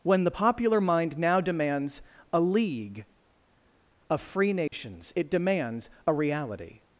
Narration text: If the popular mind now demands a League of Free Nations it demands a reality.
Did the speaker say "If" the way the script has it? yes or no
no